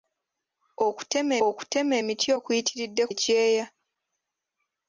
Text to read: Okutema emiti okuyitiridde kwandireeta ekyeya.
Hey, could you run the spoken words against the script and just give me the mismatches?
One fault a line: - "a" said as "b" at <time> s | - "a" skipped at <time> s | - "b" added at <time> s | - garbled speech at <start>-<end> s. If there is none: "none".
- "okutema" added at 1.5 s
- "kwandireeta" skipped at 3.0 s